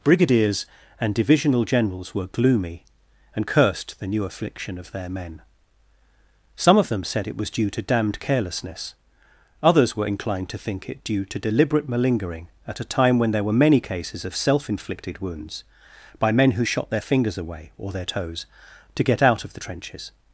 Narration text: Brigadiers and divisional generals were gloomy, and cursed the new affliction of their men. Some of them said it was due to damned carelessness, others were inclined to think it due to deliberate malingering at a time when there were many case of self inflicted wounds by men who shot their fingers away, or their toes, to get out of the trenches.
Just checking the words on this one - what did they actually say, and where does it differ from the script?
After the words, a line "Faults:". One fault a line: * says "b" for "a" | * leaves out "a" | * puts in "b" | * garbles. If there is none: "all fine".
Brigadiers and divisional generals were gloomy, and cursed the new affliction of their men. Some of them said it was due to damned carelessness, others were inclined to think it due to deliberate malingering at a time when there were many cases of self inflicted wounds by men who shot their fingers away, or their toes, to get out of the trenches.
Faults:
* says "cases" for "case"